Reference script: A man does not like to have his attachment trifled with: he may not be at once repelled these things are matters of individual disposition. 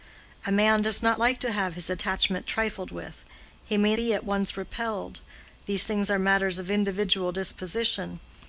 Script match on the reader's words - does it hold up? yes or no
no